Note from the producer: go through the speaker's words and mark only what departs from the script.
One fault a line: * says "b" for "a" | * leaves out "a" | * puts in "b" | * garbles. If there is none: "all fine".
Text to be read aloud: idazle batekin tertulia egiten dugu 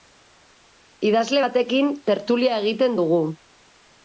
all fine